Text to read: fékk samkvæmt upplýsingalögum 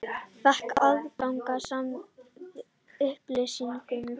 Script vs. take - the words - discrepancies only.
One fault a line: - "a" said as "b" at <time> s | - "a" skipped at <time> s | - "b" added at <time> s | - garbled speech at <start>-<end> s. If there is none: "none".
- "aðgang" added at 0.9 s